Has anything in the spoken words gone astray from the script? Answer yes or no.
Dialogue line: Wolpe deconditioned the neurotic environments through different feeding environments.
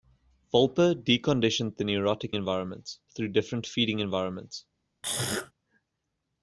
no